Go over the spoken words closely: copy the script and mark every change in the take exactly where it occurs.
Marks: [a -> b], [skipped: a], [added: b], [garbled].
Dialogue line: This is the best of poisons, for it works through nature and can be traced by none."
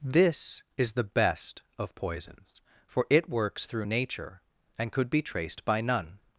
This is the best of poisons, for it works through nature and [can -> could] be traced by none."